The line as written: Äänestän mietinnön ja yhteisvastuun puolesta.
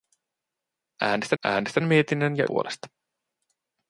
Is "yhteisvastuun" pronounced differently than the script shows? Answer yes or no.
yes